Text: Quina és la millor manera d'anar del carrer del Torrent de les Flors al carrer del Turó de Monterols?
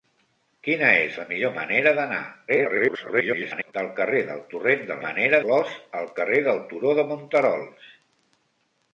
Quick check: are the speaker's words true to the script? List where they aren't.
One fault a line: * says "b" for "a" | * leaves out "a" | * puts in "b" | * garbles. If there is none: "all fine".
* garbles
* says "manera" for "les"